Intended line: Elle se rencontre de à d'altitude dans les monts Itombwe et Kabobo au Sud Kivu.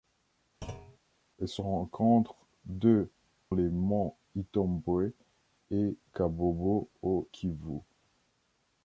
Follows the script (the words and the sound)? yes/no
no